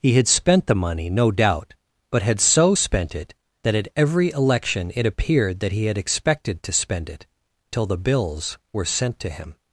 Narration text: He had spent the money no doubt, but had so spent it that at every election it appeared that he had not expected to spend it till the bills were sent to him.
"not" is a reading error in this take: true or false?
true